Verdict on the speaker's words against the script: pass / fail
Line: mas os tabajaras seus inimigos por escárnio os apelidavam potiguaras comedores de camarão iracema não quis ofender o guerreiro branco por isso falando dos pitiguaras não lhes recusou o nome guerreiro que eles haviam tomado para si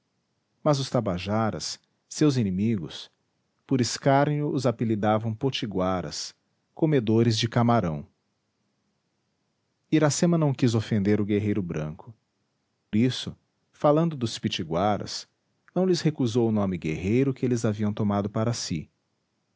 fail